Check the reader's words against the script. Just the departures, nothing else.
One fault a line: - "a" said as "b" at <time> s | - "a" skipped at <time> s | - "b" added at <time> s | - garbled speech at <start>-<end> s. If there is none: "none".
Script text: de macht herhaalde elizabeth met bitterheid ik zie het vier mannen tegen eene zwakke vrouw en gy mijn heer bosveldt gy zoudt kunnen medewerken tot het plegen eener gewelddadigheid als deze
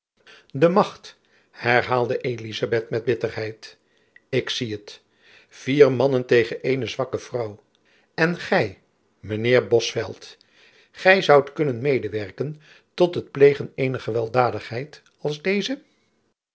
none